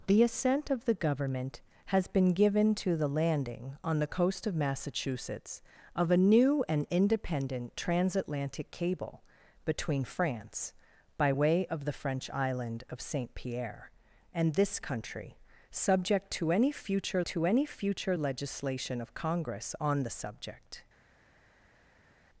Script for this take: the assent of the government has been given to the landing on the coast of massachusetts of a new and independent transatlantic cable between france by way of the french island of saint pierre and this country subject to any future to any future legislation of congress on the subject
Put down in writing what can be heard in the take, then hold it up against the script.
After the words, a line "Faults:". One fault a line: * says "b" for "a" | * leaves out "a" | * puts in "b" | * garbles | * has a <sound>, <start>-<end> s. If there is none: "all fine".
the assent of the government has been given to the landing on the coast of massachusetts of a new and independent transatlantic cable between france by way of the french island of saint pierre and this country subject to any future to any future legislation of congress on the subject
Faults:
all fine